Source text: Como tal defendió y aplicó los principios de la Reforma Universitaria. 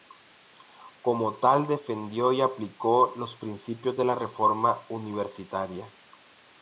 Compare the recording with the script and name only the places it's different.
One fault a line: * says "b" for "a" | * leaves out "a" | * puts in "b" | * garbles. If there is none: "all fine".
all fine